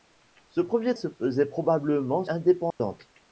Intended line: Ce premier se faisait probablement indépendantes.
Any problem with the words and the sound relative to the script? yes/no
yes